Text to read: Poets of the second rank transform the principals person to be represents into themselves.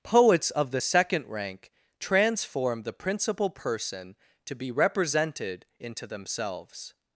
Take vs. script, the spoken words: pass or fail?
fail